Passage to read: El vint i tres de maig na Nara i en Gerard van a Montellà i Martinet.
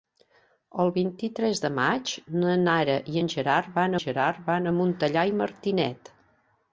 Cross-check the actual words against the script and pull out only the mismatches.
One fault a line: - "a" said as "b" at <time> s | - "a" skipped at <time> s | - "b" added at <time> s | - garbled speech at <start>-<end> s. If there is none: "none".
- "Gerard van" added at 4.0 s